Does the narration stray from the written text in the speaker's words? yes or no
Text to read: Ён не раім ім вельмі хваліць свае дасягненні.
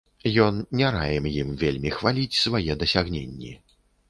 no